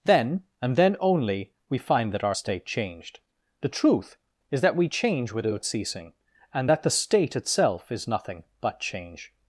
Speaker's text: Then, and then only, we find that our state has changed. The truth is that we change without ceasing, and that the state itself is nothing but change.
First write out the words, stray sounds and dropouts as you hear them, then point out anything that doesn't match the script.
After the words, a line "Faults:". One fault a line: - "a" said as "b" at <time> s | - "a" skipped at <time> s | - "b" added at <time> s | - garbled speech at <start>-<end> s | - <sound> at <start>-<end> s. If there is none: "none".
Then, and then only, we find that our state changed. The truth is that we change without ceasing, and that the state itself is nothing but change.
Faults:
- "has" skipped at 2.6 s